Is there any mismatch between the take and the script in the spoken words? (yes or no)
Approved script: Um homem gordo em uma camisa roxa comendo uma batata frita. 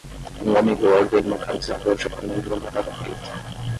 no